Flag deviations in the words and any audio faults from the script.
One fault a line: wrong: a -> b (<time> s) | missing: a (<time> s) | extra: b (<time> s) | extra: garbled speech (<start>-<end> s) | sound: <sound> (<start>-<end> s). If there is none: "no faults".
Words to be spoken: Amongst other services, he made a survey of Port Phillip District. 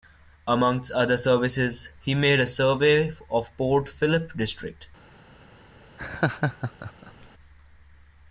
sound: laugh (6.0-7.3 s)